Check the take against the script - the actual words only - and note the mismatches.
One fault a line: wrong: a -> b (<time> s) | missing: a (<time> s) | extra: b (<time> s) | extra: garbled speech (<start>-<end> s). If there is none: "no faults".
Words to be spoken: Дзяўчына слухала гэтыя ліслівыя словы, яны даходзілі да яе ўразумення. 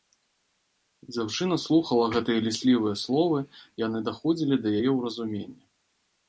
no faults